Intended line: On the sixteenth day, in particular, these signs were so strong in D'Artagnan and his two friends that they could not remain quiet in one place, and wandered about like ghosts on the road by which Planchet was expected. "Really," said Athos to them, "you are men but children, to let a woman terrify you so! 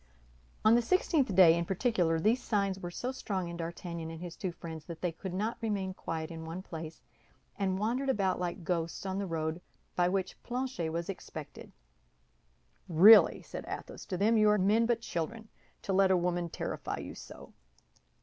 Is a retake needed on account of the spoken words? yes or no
no